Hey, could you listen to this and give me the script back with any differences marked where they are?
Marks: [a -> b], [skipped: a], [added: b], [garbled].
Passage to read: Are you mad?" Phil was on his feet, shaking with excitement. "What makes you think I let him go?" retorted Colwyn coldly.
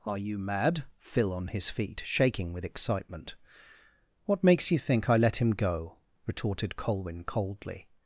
Are you mad?" Phil [skipped: was] on his feet, shaking with excitement. "What makes you think I let him go?" retorted Colwyn coldly.